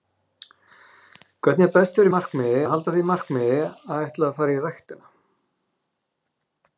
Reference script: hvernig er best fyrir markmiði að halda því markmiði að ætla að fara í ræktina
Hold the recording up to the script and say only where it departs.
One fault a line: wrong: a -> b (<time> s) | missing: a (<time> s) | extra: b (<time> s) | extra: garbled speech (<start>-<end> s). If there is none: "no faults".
no faults